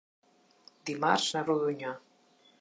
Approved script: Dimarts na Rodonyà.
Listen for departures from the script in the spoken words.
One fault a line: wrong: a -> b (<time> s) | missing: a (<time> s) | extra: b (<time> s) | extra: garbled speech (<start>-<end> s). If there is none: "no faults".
no faults